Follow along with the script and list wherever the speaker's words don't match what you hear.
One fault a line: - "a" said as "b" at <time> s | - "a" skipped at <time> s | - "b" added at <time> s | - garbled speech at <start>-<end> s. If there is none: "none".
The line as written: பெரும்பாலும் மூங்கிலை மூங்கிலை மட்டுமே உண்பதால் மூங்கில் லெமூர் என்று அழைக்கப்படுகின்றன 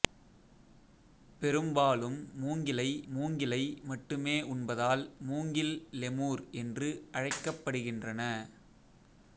none